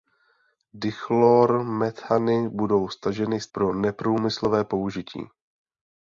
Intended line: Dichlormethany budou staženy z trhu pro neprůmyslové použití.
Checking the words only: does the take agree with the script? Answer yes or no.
no